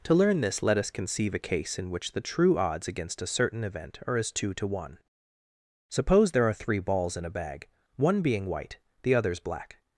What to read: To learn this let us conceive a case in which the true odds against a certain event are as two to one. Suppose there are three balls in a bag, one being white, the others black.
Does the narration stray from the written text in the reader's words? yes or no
no